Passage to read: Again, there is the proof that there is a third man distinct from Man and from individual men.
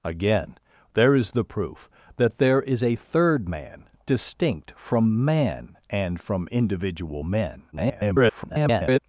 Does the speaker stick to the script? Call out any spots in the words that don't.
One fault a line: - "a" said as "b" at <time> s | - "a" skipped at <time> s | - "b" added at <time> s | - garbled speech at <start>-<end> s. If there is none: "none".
- garbled speech at 7.7-9.0 s